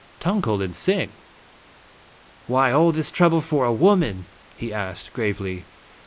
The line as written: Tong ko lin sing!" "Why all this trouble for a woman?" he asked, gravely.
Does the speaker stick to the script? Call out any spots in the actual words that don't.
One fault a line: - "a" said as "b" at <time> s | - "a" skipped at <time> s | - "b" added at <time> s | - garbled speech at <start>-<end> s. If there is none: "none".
none